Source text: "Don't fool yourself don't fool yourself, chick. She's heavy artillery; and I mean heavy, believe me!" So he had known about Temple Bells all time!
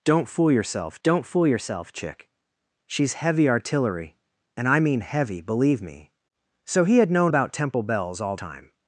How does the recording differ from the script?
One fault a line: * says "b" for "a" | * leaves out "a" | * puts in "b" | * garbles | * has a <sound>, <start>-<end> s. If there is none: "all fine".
all fine